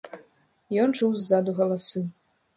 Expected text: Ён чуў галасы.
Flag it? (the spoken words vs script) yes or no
yes